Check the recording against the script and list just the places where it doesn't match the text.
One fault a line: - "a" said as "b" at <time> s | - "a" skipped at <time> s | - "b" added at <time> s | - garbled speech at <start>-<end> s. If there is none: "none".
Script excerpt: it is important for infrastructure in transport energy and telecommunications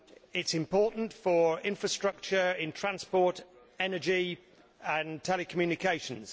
none